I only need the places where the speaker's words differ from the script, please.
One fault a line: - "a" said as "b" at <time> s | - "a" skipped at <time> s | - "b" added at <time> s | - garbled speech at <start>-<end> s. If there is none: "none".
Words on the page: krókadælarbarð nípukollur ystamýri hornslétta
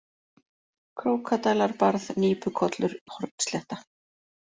- "ystamýri" skipped at 3.0 s